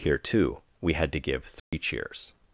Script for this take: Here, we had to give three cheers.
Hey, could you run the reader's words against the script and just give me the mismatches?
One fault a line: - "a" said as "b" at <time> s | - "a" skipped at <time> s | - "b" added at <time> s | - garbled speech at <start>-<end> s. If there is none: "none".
- "too" added at 0.2 s